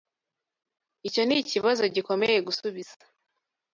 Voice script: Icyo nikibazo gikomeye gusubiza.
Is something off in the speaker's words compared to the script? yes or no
no